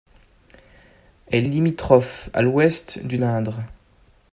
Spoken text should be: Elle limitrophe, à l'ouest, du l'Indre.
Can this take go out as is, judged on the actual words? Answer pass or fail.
pass